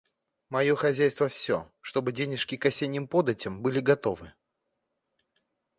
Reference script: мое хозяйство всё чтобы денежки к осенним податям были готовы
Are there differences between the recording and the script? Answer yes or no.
no